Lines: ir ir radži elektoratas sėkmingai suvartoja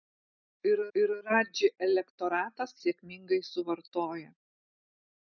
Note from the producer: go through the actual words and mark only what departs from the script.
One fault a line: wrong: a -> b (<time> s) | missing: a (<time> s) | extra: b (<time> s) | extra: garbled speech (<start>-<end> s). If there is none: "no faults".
no faults